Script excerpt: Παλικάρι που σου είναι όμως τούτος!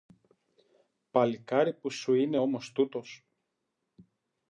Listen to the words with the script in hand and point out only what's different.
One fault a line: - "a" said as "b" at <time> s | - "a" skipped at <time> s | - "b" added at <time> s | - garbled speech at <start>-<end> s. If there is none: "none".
none